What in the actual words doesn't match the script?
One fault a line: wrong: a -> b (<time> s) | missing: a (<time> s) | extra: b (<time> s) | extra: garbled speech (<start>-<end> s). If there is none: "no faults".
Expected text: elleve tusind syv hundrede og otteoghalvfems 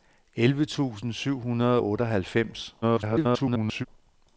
extra: garbled speech (2.8-3.9 s)